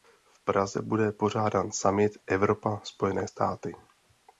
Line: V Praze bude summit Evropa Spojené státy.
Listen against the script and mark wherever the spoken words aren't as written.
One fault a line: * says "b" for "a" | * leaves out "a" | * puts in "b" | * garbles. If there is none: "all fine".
* puts in "pořádán"